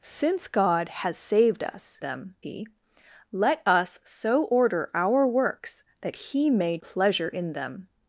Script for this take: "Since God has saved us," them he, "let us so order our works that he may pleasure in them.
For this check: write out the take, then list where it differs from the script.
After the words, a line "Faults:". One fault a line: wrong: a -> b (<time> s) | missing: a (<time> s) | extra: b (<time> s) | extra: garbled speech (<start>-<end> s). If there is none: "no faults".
"Since God has saved us," them he, "let us so order our works that he may pleasure in them.
Faults:
no faults